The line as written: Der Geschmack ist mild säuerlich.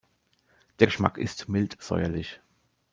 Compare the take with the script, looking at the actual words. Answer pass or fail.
pass